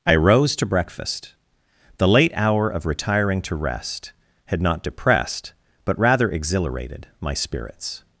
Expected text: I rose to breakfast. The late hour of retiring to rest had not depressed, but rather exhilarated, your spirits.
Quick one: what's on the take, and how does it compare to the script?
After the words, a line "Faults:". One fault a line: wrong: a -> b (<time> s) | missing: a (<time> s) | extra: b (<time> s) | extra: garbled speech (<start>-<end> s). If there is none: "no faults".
I rose to breakfast. The late hour of retiring to rest had not depressed, but rather exhilarated, my spirits.
Faults:
wrong: your -> my (7.2 s)